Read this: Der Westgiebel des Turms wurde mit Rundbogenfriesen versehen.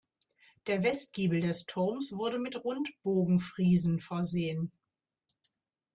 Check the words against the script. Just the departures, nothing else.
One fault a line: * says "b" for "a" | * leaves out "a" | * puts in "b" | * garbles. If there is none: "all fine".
all fine